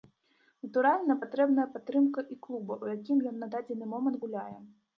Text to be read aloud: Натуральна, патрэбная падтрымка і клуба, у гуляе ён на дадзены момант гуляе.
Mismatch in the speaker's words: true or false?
true